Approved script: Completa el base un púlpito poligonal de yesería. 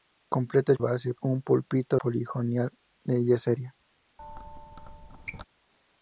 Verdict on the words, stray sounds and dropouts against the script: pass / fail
fail